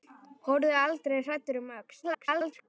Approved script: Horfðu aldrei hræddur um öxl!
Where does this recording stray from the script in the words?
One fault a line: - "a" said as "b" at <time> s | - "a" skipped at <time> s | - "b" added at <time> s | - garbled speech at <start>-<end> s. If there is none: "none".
- garbled speech at 2.0-2.7 s